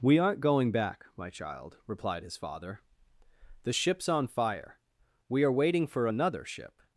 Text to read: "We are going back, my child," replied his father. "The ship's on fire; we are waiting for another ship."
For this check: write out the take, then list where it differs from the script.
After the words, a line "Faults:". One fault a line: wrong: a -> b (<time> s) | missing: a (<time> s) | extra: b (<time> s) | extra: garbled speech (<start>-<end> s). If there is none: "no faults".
"We aren't going back, my child," replied his father. "The ship's on fire; we are waiting for another ship."
Faults:
wrong: are -> aren't (0.2 s)